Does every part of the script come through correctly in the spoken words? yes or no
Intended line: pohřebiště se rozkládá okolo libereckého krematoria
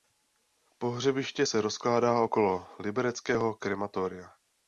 yes